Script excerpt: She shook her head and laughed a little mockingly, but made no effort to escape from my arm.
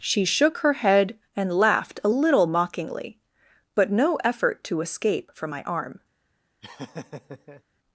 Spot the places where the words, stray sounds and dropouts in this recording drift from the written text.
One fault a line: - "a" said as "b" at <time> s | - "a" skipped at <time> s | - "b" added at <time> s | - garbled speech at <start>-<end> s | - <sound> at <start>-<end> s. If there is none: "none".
- "made" skipped at 3.9 s
- laugh at 6.6-7.6 s